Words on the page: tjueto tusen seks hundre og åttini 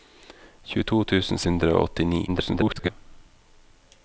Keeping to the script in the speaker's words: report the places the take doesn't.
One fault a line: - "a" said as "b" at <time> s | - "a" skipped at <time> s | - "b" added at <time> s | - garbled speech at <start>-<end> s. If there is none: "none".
- "seks" skipped at 1.4 s
- garbled speech at 2.3-2.9 s